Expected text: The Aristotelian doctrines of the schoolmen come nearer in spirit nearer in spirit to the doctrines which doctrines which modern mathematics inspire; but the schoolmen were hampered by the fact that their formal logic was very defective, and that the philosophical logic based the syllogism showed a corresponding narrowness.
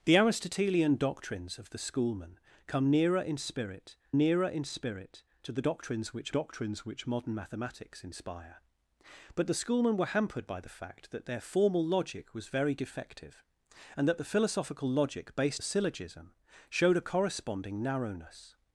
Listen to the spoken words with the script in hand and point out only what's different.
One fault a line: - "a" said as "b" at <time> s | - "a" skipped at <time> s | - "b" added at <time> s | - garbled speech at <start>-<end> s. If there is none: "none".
none